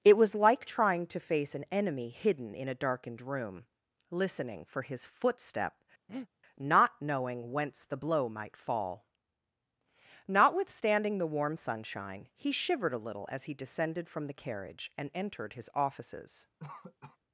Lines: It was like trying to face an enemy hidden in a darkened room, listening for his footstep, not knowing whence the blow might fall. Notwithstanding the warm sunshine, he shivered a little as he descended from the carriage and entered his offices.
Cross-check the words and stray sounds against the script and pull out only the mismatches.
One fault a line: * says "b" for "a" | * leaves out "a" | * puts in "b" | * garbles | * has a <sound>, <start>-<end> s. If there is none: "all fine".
* has a breath, 6.1-6.3 s
* has a cough, 16.6-17.2 s